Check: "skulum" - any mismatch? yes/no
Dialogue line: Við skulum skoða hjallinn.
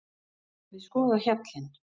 yes